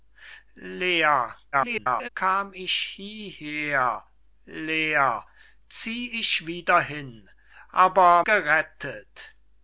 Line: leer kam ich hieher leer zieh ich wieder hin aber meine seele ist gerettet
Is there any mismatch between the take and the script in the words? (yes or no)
yes